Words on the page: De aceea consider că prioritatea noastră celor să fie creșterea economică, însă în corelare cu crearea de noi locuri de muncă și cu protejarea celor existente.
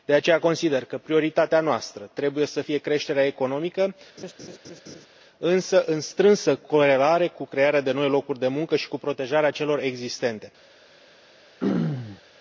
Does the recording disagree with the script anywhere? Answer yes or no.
yes